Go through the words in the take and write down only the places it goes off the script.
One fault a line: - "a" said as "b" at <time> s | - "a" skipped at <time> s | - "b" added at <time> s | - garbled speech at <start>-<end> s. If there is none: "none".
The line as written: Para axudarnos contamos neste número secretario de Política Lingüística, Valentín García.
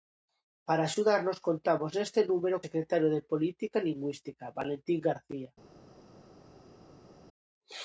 none